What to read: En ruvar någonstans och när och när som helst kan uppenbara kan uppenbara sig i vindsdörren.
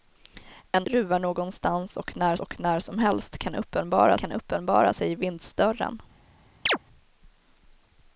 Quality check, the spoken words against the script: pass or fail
pass